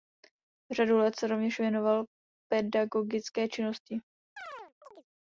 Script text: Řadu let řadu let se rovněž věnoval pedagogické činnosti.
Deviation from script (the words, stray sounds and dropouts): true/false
true